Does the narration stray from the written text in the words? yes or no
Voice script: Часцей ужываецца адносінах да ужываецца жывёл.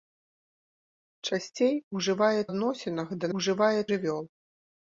no